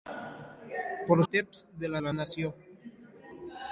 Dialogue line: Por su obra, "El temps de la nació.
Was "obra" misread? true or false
true